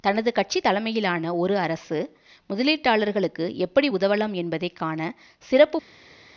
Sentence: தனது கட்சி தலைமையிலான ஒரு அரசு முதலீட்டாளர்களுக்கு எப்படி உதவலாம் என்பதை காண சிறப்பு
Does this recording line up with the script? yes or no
yes